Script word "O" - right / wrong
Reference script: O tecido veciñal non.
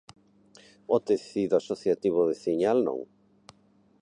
right